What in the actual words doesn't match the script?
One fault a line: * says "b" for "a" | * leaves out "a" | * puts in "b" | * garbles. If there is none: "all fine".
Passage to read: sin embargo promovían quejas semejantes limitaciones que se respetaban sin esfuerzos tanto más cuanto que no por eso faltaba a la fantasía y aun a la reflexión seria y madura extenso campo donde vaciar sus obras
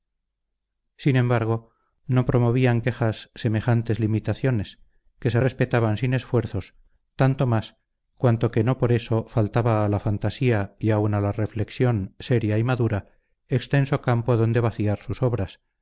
* puts in "no"